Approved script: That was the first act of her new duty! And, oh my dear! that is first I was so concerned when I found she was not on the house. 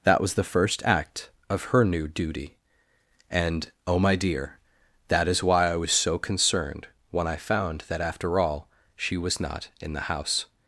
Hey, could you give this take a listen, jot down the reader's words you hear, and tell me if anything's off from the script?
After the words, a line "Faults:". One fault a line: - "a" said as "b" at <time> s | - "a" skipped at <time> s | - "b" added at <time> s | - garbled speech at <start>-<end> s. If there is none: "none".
That was the first act of her new duty! And, oh my dear! that is why I was so concerned when I found that after all she was not in the house.
Faults:
- "first" said as "why" at 5.4 s
- "that after all" added at 7.9 s
- "on" said as "in" at 9.8 s